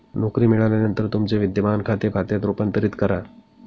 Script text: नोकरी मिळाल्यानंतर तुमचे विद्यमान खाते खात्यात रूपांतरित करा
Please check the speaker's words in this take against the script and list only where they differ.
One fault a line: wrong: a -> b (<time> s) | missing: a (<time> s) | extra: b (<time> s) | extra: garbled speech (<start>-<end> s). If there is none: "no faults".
no faults